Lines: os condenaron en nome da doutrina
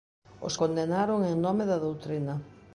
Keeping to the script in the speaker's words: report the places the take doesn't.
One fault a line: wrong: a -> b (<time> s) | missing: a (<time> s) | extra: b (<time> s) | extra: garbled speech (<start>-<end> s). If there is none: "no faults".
no faults